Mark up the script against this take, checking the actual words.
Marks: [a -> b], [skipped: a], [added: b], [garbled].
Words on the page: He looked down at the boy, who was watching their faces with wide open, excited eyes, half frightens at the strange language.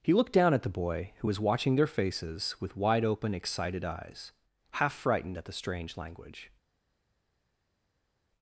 He looked down at the boy, who was watching their faces with wide open, excited eyes, half [frightens -> frightened] at the strange language.